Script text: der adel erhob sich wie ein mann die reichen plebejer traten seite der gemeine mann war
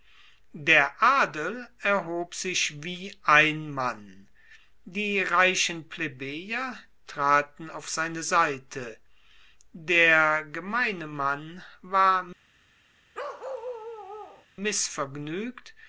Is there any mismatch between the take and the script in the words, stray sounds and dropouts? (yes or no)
yes